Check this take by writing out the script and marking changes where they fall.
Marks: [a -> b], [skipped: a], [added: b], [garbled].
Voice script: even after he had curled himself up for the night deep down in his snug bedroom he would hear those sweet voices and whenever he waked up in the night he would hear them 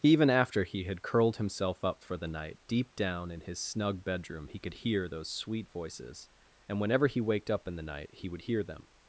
even after he had curled himself up for the night deep down in his snug bedroom he [would -> could] hear those sweet voices and whenever he waked up in the night he would hear them